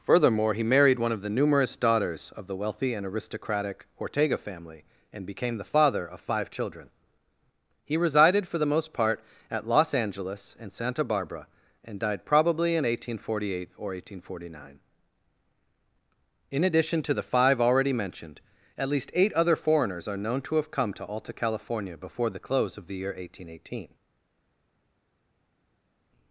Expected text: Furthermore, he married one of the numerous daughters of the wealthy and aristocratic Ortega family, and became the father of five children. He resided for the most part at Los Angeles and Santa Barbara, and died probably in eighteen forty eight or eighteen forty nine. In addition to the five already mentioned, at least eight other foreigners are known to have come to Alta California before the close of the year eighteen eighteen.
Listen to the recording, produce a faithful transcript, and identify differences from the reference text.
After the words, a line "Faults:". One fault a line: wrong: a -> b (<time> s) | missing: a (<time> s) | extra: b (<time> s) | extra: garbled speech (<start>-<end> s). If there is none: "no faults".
Furthermore, he married one of the numerous daughters of the wealthy and aristocratic Ortega family, and became the father of five children. He resided for the most part at Los Angeles and Santa Barbara, and died probably in eighteen forty eight or eighteen forty nine. In addition to the five already mentioned, at least eight other foreigners are known to have come to Alta California before the close of the year eighteen eighteen.
Faults:
no faults